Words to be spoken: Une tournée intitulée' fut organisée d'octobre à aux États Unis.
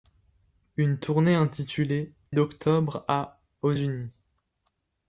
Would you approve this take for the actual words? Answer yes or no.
no